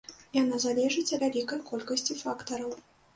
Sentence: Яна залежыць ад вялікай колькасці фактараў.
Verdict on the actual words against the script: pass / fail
fail